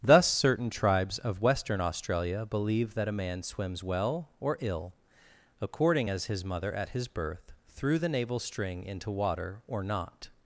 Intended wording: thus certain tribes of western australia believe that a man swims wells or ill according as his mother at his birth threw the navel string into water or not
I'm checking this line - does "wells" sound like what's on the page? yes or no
no